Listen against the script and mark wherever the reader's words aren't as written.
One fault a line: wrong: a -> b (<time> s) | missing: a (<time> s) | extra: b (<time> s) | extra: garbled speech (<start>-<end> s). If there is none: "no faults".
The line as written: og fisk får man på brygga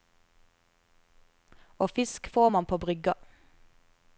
no faults